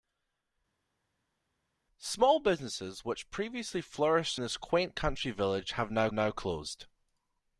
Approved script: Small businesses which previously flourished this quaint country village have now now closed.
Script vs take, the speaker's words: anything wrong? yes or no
no